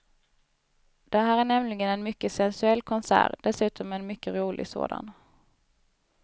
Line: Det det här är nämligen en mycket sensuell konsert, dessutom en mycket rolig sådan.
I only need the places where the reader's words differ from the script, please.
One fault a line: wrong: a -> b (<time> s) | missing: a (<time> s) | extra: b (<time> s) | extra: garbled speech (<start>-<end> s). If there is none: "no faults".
missing: det (1.2 s)